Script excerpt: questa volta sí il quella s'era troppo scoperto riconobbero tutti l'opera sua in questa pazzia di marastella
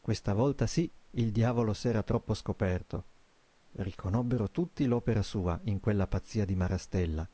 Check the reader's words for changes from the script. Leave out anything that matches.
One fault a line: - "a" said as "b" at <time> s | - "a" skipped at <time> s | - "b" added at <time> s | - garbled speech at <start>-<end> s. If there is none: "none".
- "quella" said as "diavolo" at 1.3 s
- "questa" said as "quella" at 5.8 s